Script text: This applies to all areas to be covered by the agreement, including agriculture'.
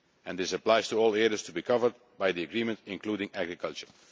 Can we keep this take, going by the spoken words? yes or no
yes